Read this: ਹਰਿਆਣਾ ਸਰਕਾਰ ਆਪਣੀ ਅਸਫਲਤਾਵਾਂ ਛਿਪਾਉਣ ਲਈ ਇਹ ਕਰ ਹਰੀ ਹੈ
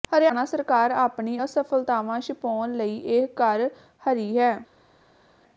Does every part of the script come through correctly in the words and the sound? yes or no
yes